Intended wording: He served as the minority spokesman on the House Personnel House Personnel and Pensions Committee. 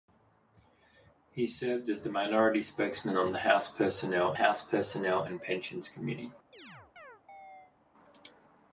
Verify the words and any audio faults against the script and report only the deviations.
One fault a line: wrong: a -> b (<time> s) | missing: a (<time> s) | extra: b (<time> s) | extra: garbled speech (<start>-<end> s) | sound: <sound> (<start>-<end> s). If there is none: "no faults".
sound: chirp (6.5-7.8 s)